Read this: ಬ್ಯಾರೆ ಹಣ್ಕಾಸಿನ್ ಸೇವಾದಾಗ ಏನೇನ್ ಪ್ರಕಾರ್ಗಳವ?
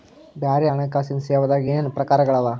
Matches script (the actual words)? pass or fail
pass